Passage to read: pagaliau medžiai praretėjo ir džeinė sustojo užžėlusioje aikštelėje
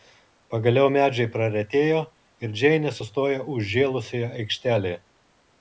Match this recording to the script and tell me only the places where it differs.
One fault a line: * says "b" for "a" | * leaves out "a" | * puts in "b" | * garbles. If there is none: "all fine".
all fine